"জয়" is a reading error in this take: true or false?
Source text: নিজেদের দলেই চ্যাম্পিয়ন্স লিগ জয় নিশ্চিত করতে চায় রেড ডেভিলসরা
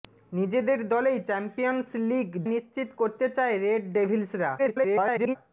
true